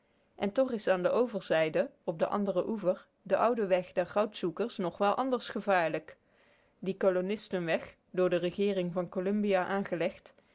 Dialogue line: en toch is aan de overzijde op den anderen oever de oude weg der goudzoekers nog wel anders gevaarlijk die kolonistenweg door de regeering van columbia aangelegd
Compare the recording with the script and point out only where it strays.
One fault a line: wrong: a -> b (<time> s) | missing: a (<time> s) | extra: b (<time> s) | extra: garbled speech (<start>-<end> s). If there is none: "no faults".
no faults